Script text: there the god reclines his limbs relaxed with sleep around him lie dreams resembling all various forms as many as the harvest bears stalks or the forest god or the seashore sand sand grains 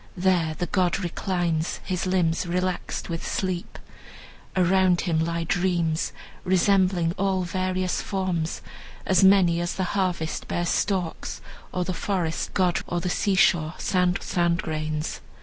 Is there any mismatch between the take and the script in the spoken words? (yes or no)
no